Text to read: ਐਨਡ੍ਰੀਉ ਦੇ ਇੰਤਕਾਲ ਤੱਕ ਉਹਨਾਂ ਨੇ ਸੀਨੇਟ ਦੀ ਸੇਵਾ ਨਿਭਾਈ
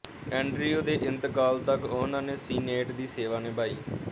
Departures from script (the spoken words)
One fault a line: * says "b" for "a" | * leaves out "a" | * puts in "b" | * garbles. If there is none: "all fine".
all fine